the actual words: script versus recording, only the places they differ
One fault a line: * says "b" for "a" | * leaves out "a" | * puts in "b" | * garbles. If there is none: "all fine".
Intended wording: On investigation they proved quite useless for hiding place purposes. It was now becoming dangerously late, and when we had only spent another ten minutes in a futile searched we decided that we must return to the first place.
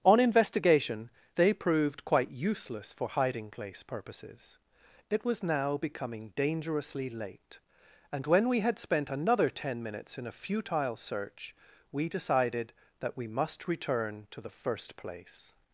* leaves out "only"
* says "search" for "searched"